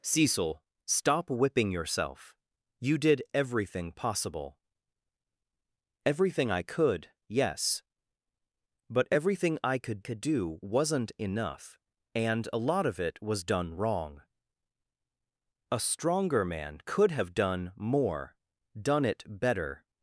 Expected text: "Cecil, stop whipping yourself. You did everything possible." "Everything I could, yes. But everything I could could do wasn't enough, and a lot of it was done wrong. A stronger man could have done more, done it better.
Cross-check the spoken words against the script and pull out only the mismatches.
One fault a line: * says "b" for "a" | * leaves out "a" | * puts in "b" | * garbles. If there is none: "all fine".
all fine